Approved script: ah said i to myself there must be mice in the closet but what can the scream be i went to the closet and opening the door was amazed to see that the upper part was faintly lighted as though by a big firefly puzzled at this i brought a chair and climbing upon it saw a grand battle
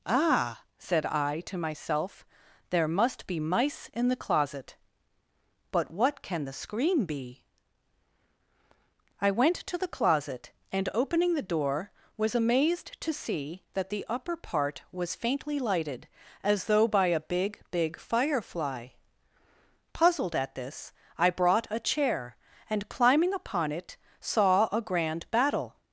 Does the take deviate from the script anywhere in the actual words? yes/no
yes